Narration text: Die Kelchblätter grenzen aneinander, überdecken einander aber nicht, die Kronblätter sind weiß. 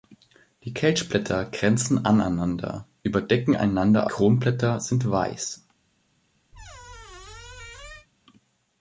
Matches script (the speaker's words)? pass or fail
fail